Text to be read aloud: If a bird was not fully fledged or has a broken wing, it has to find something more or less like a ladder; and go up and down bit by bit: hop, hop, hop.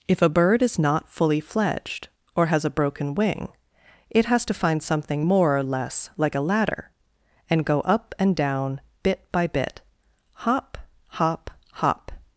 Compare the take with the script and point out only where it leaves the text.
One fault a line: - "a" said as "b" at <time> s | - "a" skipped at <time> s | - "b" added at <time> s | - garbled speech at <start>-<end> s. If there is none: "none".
- "was" said as "is" at 0.6 s